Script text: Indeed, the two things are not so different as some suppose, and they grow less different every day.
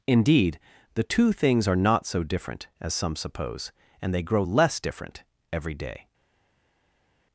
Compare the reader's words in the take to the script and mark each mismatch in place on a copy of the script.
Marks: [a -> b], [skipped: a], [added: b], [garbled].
Indeed, the two things are not so different as some suppose, and they grow less different every day.